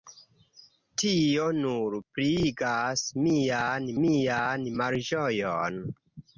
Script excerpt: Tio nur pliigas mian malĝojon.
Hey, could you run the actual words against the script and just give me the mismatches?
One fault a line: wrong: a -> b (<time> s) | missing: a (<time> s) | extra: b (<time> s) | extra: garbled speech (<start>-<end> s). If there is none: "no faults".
extra: mian (4.0 s)